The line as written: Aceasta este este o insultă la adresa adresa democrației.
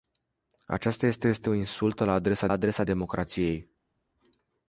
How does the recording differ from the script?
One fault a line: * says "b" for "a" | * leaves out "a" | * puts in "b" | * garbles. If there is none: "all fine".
all fine